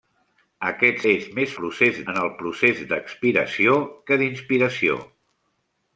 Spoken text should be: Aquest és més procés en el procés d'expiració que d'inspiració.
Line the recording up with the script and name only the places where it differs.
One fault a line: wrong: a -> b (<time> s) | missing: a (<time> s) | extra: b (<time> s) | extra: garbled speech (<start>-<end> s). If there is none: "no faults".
no faults